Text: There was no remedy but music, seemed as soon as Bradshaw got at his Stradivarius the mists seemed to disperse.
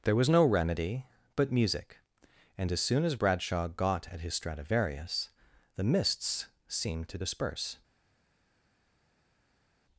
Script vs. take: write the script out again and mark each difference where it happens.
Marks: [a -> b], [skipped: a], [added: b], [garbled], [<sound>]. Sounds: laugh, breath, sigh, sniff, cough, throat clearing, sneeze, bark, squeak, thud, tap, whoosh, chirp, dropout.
There was no remedy but music, [seemed -> and] as soon as Bradshaw got at his Stradivarius the mists seemed to disperse.